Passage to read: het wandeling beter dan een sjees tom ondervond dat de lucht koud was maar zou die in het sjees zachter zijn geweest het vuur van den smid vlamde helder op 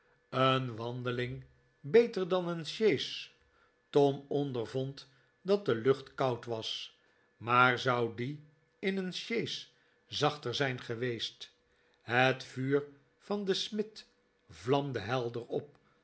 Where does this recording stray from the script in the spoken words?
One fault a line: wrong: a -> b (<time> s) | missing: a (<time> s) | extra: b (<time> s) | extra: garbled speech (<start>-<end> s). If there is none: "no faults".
wrong: het -> een (0.3 s)
wrong: het -> een (9.0 s)